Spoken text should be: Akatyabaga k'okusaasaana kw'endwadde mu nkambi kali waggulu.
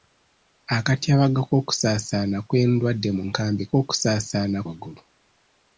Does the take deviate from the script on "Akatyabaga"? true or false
false